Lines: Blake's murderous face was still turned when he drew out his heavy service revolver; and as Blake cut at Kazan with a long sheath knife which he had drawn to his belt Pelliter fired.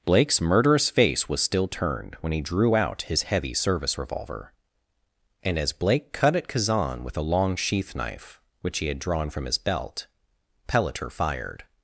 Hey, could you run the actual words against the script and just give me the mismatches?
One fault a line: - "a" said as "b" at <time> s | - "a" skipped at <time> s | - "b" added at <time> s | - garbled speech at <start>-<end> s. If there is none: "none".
- "to" said as "from" at 9.3 s